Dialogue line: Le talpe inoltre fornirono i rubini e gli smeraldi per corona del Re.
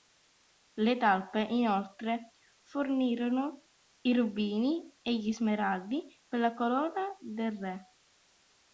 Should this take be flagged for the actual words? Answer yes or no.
yes